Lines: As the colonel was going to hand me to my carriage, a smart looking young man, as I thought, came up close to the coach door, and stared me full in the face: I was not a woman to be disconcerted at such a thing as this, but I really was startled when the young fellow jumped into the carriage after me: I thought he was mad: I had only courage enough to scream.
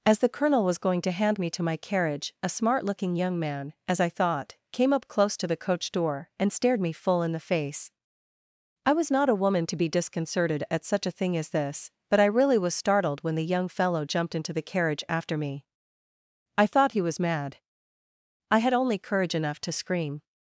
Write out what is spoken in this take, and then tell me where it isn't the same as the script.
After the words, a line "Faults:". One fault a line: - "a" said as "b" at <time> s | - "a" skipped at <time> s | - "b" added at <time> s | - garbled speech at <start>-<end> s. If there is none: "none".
As the colonel was going to hand me to my carriage, a smart looking young man, as I thought, came up close to the coach door, and stared me full in the face: I was not a woman to be disconcerted at such a thing as this, but I really was startled when the young fellow jumped into the carriage after me: I thought he was mad: I had only courage enough to scream.
Faults:
none